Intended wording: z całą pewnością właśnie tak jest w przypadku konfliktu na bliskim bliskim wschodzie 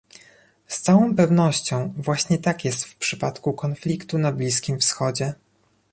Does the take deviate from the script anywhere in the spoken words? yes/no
yes